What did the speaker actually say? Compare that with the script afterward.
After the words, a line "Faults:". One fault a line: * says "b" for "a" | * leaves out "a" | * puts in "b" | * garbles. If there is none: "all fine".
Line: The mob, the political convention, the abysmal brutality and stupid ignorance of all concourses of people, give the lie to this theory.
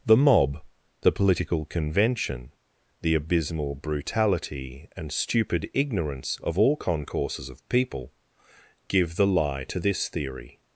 The mob, the political convention, the abysmal brutality and stupid ignorance of all concourses of people, give the lie to this theory.
Faults:
all fine